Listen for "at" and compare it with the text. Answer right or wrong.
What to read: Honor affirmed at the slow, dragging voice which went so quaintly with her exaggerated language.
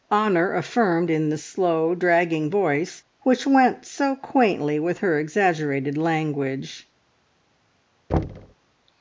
wrong